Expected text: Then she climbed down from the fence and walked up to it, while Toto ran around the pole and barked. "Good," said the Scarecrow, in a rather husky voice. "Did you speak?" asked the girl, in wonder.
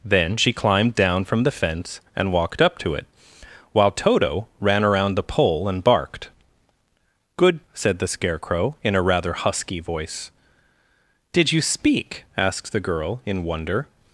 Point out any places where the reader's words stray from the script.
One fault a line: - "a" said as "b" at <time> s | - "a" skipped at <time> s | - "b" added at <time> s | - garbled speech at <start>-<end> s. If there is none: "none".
none